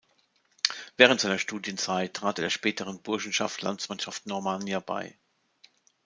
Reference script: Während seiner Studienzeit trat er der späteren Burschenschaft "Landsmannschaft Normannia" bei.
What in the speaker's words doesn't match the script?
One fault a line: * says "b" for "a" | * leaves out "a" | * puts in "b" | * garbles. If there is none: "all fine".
all fine